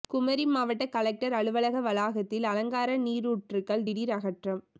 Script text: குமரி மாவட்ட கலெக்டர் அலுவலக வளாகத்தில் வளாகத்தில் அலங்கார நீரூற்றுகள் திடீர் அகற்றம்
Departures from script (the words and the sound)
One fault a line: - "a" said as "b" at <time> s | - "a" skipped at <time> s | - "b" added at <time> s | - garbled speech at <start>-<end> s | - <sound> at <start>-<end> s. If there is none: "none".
- "வளாகத்தில்" skipped at 2.5 s